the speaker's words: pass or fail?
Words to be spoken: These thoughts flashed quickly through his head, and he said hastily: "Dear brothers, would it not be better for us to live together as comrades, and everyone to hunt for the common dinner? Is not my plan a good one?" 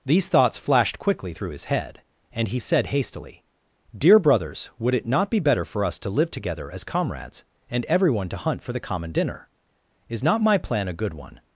pass